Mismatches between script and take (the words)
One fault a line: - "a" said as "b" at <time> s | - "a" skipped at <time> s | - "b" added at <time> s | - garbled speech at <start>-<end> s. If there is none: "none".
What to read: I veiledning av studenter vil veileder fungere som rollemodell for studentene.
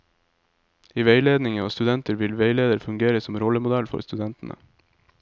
none